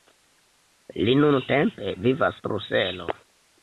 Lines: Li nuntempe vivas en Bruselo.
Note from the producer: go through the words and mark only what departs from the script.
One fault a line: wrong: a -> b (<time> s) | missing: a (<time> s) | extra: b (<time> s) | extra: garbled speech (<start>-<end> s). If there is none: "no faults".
missing: en (2.4 s)